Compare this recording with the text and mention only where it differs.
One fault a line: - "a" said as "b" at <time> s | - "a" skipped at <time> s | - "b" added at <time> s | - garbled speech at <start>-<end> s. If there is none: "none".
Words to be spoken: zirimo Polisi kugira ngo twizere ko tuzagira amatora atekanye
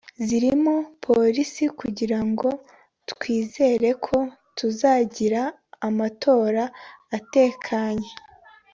none